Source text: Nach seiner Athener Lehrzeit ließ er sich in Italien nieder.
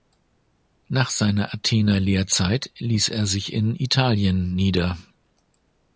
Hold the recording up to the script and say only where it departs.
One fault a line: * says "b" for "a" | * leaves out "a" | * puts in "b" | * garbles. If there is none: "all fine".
all fine